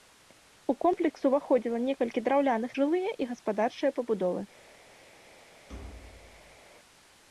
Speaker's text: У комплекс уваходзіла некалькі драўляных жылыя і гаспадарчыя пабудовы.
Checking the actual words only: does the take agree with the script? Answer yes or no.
yes